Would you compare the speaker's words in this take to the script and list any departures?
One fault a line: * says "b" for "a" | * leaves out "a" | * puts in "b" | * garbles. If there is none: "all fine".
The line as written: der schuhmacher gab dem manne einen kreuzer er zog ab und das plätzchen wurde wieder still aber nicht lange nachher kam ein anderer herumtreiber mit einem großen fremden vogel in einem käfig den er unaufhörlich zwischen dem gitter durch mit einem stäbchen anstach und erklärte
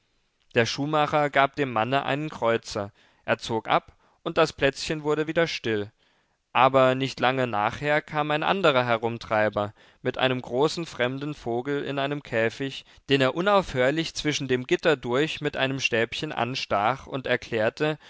all fine